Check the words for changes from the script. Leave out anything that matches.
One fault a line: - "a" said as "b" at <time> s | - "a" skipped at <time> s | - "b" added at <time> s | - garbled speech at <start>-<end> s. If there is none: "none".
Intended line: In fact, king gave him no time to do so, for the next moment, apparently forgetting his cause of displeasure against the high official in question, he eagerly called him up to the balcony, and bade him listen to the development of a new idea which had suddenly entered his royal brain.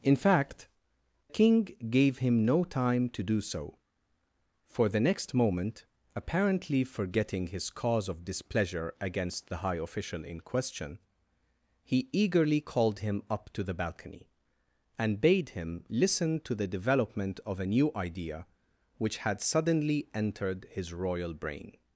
none